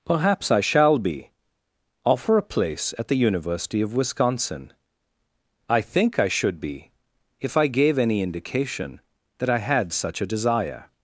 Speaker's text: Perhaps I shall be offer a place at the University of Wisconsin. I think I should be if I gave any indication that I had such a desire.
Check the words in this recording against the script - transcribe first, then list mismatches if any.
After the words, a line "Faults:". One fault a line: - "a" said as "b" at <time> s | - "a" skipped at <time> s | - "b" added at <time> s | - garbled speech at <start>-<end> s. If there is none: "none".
Perhaps I shall be offer a place at the University of Wisconsin. I think I should be if I gave any indication that I had such a desire.
Faults:
none